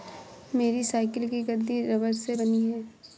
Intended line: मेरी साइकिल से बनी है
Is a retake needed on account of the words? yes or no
yes